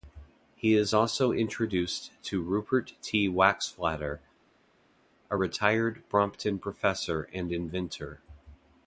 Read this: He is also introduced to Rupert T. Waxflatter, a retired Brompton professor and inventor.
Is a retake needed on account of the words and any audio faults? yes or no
no